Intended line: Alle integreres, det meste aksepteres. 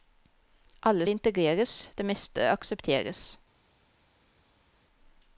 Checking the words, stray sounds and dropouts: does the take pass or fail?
pass